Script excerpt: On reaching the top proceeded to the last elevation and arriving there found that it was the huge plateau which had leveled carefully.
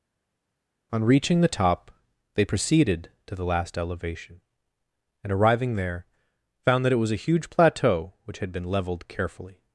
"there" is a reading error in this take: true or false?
false